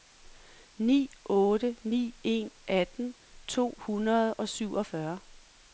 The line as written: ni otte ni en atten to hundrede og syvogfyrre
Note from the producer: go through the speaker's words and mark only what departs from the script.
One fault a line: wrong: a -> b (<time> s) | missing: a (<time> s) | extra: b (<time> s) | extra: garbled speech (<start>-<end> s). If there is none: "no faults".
no faults